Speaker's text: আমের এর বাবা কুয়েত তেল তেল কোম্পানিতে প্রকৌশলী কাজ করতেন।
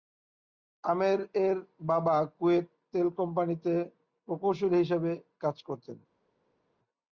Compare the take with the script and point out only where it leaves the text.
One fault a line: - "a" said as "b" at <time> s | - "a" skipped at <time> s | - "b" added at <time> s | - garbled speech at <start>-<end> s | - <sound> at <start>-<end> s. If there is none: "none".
- "তেল" skipped at 3.1 s
- "হিসেবে" added at 4.8 s